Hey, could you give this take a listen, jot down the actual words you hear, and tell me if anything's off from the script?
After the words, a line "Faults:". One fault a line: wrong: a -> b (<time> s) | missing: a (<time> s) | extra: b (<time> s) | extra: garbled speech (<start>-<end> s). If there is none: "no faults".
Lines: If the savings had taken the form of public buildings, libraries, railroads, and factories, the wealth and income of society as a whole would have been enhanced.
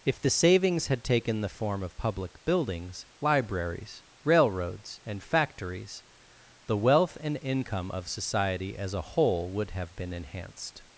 If the savings had taken the form of public buildings, libraries, railroads, and factories, the wealth and income of society as a whole would have been enhanced.
Faults:
no faults